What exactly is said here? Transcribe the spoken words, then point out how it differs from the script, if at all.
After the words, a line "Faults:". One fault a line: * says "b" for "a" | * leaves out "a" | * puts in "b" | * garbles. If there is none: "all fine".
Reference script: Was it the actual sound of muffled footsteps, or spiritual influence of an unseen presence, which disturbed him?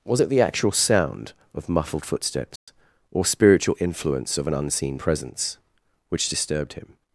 Was it the actual sound of muffled footsteps, or spiritual influence of an unseen presence, which disturbed him?
Faults:
all fine